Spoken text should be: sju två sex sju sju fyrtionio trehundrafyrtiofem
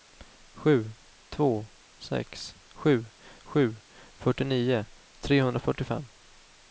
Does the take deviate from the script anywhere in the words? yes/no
no